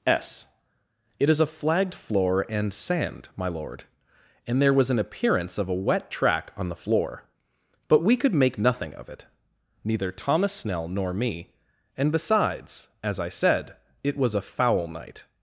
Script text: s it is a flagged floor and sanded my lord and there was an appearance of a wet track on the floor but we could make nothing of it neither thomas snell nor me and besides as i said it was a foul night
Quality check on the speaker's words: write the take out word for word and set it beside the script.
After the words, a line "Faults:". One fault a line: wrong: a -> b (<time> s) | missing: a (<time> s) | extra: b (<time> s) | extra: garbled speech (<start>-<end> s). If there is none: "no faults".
s it is a flagged floor and sand my lord and there was an appearance of a wet track on the floor but we could make nothing of it neither thomas snell nor me and besides as i said it was a foul night
Faults:
wrong: sanded -> sand (2.7 s)